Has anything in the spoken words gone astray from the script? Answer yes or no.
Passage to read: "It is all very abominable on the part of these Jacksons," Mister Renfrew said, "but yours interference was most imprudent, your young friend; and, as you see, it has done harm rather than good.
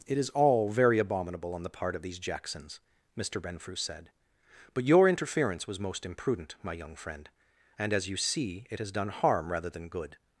yes